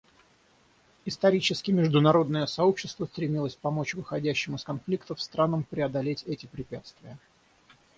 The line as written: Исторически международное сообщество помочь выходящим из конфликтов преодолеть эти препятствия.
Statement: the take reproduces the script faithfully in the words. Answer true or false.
false